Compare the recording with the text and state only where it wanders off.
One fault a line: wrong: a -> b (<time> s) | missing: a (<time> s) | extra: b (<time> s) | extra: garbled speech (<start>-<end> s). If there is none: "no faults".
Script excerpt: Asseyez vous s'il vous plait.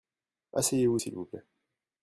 no faults